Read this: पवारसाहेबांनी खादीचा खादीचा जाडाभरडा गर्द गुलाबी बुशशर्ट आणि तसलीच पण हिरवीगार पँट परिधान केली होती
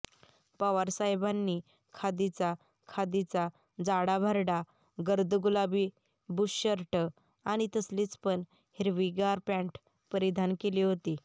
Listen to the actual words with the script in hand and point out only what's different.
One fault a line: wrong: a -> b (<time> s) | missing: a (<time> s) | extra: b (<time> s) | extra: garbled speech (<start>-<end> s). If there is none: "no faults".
no faults